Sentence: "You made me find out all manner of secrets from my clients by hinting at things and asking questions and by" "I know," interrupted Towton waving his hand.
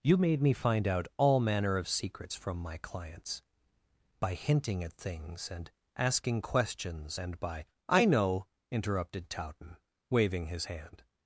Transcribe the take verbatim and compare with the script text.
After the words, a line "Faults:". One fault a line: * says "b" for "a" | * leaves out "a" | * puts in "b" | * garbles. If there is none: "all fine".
"You made me find out all manner of secrets from my clients by hinting at things and asking questions and by" "I know," interrupted Towton waving his hand.
Faults:
all fine